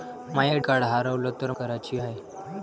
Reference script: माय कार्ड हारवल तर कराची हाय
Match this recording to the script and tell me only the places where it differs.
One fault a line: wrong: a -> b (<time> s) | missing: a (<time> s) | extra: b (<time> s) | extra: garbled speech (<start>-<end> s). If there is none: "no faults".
no faults